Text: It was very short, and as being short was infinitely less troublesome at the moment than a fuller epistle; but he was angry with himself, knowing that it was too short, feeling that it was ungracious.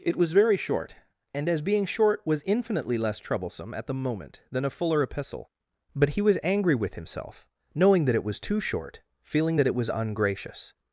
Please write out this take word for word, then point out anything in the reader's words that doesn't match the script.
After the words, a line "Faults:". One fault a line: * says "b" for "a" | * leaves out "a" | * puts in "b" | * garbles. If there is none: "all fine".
It was very short, and as being short was infinitely less troublesome at the moment than a fuller epistle; but he was angry with himself, knowing that it was too short, feeling that it was ungracious.
Faults:
all fine